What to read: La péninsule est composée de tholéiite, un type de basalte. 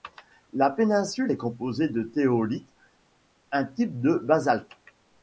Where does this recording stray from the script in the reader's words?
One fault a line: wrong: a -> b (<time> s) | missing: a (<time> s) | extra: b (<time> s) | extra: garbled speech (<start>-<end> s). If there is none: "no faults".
no faults